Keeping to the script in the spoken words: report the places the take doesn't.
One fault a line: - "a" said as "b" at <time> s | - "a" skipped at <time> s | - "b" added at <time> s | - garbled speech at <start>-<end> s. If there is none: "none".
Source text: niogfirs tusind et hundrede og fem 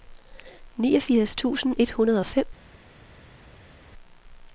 none